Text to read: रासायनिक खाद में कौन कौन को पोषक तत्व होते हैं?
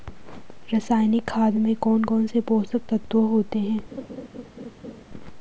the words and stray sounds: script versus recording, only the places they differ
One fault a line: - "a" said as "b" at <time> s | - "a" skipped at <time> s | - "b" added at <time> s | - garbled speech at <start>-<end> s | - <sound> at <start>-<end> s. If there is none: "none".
- "को" said as "से" at 2.3 s
- laugh at 3.9-5.0 s